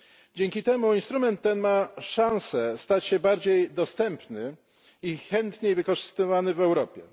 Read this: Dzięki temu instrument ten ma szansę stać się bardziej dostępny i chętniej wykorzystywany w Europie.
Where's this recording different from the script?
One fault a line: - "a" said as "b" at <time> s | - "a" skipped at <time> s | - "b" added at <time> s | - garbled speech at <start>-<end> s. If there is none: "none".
none